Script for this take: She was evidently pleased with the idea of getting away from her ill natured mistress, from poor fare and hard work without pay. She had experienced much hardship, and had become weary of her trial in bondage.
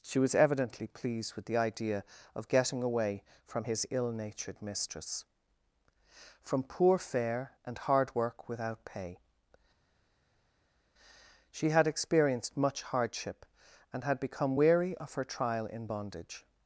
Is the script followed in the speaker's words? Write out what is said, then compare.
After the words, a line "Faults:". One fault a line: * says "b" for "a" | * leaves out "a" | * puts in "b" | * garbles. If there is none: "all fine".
She was evidently pleased with the idea of getting away from his ill natured mistress, from poor fare and hard work without pay. She had experienced much hardship, and had become weary of her trial in bondage.
Faults:
* says "his" for "her"